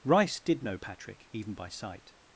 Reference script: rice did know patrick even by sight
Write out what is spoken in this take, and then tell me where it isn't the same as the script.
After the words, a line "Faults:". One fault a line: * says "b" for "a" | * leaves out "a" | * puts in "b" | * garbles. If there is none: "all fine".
rice did know patrick even by sight
Faults:
all fine